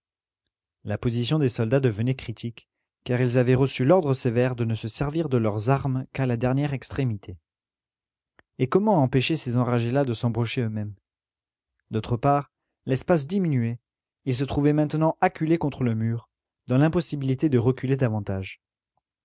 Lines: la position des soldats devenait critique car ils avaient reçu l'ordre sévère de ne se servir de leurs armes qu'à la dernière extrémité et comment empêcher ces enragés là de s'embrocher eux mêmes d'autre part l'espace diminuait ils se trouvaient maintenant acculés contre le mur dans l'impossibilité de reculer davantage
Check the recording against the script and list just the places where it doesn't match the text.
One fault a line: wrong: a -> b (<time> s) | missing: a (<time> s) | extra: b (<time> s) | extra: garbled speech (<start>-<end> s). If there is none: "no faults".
no faults